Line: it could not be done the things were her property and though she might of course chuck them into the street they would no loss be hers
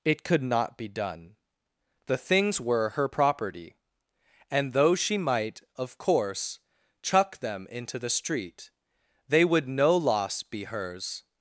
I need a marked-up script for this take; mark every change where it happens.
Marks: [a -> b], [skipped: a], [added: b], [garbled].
it could not be done the things were her property and though she might of course chuck them into the street they would no loss be hers